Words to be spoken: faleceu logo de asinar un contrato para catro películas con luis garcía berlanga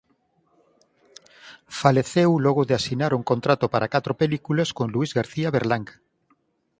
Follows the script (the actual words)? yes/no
yes